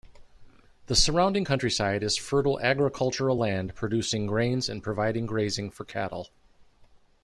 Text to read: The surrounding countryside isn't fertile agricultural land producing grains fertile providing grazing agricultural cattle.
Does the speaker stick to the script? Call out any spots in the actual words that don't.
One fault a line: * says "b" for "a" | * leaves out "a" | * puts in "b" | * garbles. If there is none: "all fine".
* says "is" for "isn't"
* says "and" for "fertile"
* says "for" for "agricultural"